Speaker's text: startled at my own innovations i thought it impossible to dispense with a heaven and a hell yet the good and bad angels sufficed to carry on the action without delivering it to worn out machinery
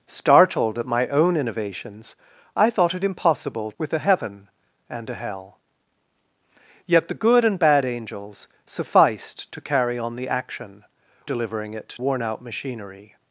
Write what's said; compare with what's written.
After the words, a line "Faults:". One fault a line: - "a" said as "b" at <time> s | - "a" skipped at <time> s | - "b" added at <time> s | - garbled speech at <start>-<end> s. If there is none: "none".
startled at my own innovations i thought it impossible with a heaven and a hell yet the good and bad angels sufficed to carry on the action delivering it worn out machinery
Faults:
- "to dispense" skipped at 3.7 s
- "without" skipped at 10.8 s
- "to" skipped at 11.9 s